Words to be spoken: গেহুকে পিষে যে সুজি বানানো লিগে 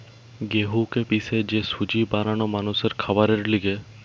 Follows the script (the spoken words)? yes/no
no